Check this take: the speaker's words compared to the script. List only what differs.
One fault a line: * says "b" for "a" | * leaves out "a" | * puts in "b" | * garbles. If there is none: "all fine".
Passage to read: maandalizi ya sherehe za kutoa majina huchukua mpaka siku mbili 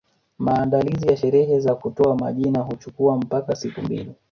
all fine